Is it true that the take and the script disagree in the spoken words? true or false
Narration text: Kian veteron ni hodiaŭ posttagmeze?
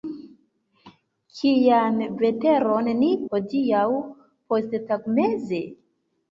false